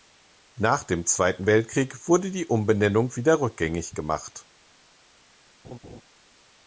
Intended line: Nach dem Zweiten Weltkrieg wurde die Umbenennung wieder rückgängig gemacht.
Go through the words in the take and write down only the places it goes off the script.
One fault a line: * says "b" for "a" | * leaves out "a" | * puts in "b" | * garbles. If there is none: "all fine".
all fine